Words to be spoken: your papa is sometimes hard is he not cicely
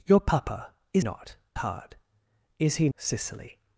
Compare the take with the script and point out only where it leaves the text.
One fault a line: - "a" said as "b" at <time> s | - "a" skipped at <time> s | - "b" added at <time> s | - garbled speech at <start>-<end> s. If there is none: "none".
- "sometimes" said as "not" at 1.0 s
- "not" skipped at 2.9 s